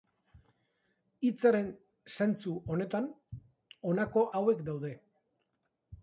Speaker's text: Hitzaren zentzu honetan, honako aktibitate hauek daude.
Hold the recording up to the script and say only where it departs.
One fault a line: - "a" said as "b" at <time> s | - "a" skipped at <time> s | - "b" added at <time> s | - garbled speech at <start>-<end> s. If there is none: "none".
- "aktibitate" skipped at 4.2 s